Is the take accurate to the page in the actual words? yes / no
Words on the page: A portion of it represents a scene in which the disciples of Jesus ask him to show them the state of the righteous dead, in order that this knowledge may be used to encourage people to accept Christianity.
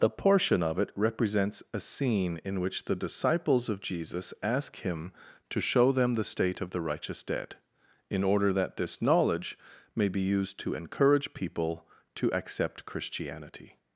no